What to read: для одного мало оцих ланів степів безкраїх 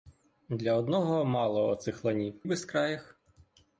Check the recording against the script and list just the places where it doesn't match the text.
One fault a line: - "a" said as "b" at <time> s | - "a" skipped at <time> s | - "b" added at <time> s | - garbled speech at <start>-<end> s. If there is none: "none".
- "степів" skipped at 2.4 s